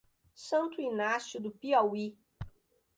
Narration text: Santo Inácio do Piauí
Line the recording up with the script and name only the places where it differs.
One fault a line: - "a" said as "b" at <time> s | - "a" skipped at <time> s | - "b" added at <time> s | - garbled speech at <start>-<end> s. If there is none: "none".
none